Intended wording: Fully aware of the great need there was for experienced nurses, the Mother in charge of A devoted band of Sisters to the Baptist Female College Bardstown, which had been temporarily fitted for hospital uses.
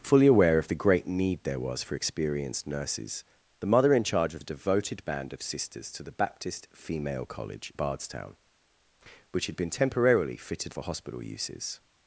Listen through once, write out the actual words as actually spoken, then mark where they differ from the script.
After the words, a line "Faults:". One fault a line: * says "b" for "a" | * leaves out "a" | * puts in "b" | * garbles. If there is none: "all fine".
Fully aware of the great need there was for experienced nurses, the Mother in charge of A devoted band of Sisters to the Baptist Female College Bardstown, which had been temporarily fitted for hospital uses.
Faults:
all fine